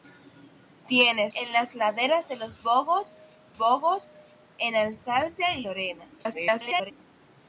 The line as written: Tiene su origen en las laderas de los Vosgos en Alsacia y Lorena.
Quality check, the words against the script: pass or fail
fail